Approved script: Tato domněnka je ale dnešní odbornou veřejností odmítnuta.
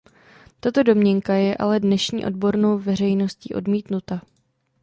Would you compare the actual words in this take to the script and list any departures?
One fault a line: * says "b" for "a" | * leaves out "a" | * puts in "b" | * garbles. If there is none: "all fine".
all fine